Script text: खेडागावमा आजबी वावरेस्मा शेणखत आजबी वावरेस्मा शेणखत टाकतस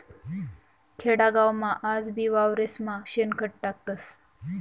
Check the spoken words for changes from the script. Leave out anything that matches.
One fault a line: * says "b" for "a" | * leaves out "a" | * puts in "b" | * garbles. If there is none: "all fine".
* leaves out "आजबी वावरेस्मा शेणखत"